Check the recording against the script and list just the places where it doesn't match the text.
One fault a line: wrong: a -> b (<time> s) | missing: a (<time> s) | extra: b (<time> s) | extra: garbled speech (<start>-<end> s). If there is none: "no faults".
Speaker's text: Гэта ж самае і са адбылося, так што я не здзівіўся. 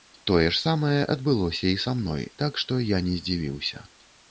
wrong: Гэта -> Тое (0.3 s)
extra: адбылося (1.2 s)
wrong: адбылося -> мной (2.0 s)